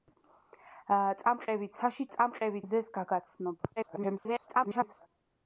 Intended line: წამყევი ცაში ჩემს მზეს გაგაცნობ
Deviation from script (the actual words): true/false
true